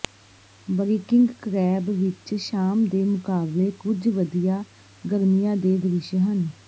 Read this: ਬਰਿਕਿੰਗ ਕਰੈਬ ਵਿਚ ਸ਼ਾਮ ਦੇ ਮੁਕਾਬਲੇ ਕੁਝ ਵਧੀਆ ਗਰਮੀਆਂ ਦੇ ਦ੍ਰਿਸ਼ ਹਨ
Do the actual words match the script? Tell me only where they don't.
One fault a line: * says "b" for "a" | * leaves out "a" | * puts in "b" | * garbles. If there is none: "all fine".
all fine